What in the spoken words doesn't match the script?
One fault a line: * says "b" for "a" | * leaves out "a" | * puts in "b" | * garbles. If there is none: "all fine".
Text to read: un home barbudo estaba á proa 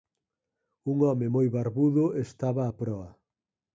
* puts in "moi"